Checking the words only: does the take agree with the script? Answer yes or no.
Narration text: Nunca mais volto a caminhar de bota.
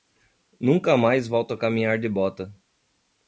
yes